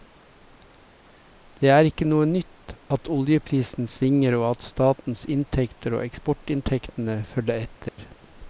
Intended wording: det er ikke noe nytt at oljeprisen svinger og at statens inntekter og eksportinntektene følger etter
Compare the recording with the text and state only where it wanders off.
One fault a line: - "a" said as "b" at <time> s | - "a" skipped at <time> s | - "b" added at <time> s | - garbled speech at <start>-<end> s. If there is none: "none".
none